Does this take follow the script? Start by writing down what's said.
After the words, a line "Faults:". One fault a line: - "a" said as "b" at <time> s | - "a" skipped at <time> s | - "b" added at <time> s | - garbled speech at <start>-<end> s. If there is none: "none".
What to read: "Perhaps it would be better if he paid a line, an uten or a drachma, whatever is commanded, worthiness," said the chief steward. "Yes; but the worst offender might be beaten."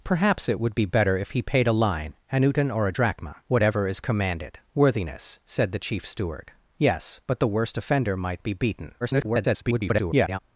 "Perhaps it would be better if he paid a line, an uten or a drachma, whatever is commanded, worthiness," said the chief steward. "Yes; but the worst offender might be beaten." [garbled]
Faults:
- garbled speech at 9.0-10.4 s